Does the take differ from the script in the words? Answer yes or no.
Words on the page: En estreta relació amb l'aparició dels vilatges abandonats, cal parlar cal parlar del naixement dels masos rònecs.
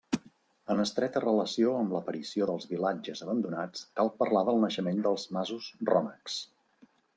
yes